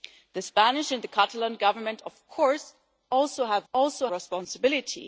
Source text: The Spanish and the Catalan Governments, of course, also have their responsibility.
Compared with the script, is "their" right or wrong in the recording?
wrong